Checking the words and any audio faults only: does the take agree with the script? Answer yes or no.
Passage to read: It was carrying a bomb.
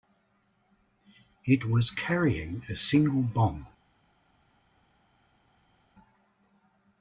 no